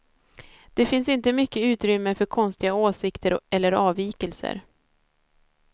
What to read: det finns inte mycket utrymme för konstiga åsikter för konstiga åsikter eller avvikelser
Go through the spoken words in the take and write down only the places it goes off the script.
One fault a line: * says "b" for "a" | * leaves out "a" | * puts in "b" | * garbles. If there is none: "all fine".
* leaves out "för konstiga åsikter"